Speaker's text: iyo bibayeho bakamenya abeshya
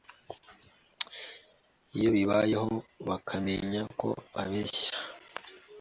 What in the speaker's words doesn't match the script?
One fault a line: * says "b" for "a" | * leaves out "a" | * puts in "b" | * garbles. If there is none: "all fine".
* puts in "ko"